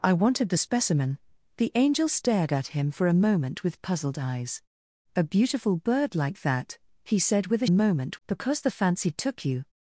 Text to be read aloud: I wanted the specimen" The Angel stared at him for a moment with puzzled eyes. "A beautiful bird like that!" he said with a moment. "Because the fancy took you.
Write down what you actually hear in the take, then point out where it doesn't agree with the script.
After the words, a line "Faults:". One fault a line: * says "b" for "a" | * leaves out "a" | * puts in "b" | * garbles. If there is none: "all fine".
I wanted the specimen" The Angel stared at him for a moment with puzzled eyes. "A beautiful bird like that!" he said with a moment. "Because the fancy took you.
Faults:
all fine